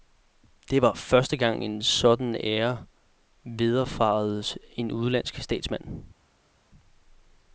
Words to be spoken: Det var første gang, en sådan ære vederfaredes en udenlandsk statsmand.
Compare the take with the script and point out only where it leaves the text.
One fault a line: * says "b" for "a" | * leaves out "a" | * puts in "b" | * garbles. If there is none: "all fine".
all fine